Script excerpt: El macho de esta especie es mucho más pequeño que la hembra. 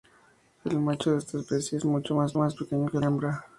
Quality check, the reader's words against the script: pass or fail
fail